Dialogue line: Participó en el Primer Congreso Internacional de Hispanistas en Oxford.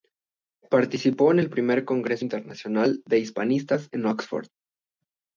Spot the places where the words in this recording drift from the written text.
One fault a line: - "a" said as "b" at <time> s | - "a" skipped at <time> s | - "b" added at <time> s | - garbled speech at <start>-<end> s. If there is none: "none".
none